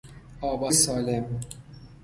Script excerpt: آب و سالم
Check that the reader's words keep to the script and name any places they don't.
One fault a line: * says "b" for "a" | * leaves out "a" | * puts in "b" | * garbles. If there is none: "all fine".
all fine